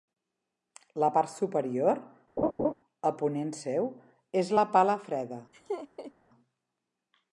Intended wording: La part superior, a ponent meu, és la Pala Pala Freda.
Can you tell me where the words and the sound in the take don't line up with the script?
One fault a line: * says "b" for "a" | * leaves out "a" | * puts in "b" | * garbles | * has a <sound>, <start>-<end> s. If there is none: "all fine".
* has a laugh, 2.4-2.7 s
* says "seu" for "meu"
* leaves out "Pala"
* has a laugh, 5.5-6.1 s